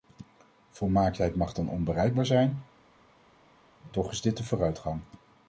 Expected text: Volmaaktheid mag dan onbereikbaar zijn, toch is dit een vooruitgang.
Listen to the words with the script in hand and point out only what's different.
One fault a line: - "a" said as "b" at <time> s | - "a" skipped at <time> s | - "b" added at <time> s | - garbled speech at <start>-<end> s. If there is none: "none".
none